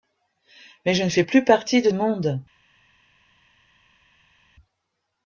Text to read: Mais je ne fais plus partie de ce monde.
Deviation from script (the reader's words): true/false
true